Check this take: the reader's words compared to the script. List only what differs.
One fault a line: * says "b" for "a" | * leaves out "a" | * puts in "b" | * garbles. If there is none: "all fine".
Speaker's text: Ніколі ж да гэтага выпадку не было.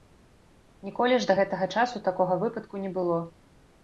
* puts in "часу такога"